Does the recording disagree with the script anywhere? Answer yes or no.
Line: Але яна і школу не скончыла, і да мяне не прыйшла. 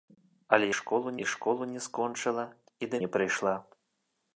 yes